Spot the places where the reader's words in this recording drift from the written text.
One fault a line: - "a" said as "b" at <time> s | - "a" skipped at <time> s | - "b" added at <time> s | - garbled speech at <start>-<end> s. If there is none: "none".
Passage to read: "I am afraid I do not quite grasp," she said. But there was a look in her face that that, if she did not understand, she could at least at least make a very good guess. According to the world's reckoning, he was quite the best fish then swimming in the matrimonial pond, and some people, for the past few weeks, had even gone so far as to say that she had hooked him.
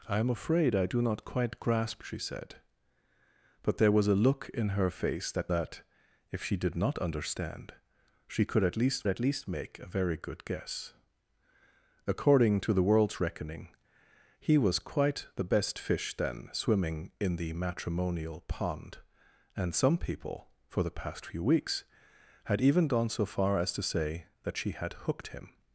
none